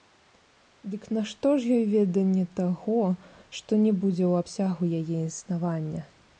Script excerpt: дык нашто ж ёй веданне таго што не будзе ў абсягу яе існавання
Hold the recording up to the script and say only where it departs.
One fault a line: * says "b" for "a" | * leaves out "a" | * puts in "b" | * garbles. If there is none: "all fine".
all fine